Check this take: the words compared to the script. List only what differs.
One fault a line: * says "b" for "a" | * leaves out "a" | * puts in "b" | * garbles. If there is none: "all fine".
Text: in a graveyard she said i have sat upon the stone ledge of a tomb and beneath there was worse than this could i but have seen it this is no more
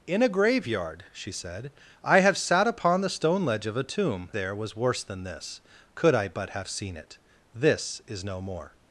* leaves out "and beneath"